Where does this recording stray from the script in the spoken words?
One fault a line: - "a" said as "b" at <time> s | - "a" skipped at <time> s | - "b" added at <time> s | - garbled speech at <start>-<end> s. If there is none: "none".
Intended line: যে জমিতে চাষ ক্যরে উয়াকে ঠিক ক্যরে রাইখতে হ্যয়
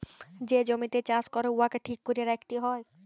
none